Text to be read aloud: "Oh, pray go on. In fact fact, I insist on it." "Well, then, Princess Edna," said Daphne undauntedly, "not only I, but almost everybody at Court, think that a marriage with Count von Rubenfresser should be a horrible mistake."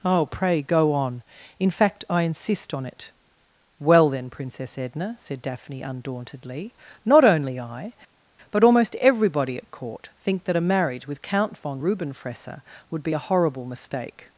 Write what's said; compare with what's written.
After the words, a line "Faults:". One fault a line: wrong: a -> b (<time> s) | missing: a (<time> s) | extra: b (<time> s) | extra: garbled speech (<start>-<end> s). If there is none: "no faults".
"Oh, pray go on. In fact, I insist on it." "Well, then, Princess Edna," said Daphne undauntedly, "not only I, but almost everybody at Court, think that a marriage with Count von Rubenfresser would be a horrible mistake."
Faults:
missing: fact (2.0 s)
wrong: should -> would (12.9 s)